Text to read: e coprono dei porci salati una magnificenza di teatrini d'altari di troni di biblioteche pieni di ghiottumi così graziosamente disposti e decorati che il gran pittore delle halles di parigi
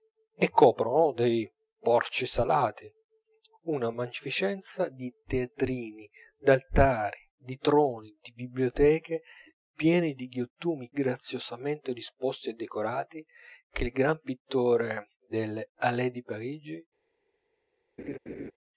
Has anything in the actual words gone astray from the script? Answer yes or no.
yes